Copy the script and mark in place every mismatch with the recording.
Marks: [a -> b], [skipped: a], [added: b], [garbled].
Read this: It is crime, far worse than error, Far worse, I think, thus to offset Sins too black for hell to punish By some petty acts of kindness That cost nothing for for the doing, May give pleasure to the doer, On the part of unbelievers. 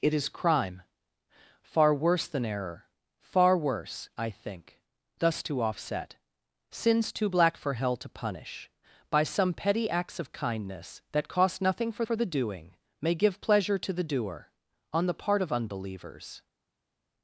It is crime, far worse than error, Far worse, I think, thus to offset Sins too black for hell to punish By some petty acts of kindness That cost nothing for for the doing, May give pleasure to the doer, On the part of unbelievers.